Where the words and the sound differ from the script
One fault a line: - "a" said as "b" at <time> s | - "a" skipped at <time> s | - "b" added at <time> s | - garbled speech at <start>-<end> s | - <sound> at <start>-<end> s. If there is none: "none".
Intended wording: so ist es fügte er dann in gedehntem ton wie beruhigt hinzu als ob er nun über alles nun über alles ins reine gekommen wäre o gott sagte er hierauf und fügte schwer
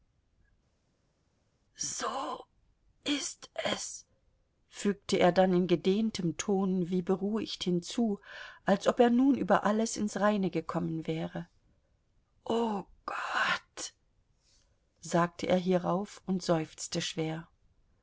- "nun über alles" skipped at 10.0 s
- "fügte" said as "seufzte" at 16.4 s